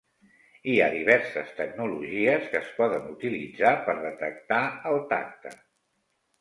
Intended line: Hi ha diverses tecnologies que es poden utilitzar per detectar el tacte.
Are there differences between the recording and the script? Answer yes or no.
no